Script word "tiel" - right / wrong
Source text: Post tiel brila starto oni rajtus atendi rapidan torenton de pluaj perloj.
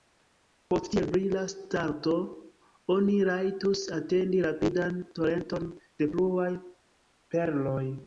right